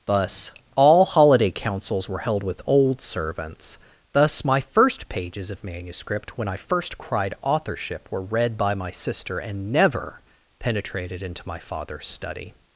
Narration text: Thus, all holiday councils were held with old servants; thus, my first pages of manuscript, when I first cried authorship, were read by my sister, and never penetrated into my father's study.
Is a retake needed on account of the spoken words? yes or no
no